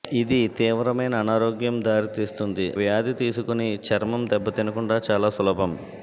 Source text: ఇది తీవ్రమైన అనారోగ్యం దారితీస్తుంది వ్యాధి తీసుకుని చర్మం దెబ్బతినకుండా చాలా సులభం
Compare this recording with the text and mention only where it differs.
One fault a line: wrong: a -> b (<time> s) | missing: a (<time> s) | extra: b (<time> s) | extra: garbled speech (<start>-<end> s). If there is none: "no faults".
no faults